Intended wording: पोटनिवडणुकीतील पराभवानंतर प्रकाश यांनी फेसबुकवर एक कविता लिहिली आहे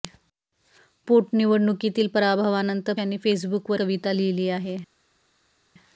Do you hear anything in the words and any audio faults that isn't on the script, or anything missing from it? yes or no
yes